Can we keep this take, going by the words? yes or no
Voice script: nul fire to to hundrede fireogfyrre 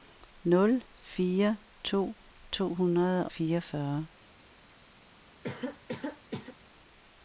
yes